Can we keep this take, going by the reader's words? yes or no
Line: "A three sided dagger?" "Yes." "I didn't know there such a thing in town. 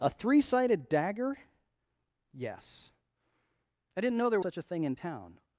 yes